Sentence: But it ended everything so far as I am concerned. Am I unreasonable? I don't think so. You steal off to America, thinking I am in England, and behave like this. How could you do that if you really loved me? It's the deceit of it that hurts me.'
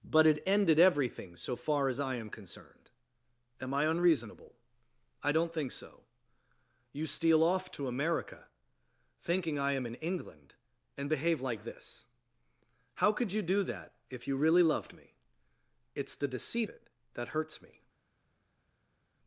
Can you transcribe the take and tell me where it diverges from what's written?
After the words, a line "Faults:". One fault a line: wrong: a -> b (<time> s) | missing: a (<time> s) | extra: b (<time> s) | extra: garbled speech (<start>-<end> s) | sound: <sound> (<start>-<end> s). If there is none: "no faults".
But it ended everything so far as I am concerned. Am I unreasonable? I don't think so. You steal off to America, thinking I am in England, and behave like this. How could you do that if you really loved me? It's the deceit it that hurts me.'
Faults:
missing: of (16.7 s)